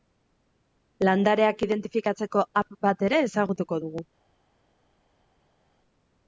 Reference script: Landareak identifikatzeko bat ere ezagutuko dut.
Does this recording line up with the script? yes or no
no